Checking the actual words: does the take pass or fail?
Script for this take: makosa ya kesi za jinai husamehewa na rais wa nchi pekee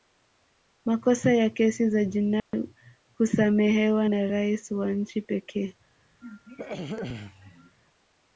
pass